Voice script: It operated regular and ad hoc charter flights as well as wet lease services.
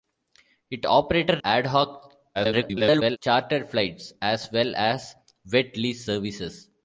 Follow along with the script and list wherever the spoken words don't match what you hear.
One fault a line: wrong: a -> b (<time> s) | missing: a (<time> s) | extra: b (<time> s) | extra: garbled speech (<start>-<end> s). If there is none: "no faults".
missing: regular and (1.4 s)
extra: garbled speech (2.3-3.2 s)